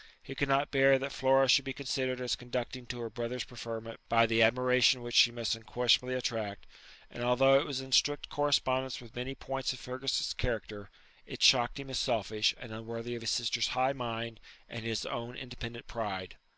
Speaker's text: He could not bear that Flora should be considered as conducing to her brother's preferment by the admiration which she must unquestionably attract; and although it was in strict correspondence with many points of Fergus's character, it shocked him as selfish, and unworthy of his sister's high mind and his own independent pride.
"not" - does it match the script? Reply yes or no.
yes